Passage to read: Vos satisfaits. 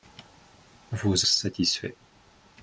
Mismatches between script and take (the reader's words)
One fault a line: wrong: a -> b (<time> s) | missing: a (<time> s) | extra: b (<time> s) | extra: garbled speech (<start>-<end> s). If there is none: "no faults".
no faults